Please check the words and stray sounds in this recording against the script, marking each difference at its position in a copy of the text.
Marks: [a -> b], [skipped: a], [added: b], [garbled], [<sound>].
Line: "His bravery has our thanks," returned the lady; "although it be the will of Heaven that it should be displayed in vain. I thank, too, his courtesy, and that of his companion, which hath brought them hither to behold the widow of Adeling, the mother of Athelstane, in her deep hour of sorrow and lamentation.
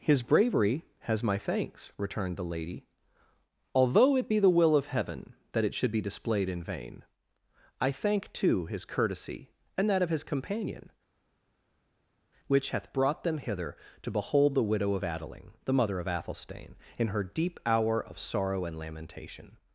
"His bravery has [our -> my] thanks," returned the lady; "although it be the will of Heaven that it should be displayed in vain. I thank, too, his courtesy, and that of his companion, which hath brought them hither to behold the widow of Adeling, the mother of Athelstane, in her deep hour of sorrow and lamentation.